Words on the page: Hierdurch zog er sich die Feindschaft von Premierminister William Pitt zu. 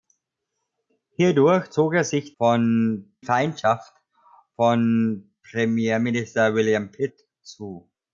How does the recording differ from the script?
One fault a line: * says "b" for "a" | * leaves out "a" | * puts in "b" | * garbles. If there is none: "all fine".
* says "von" for "die"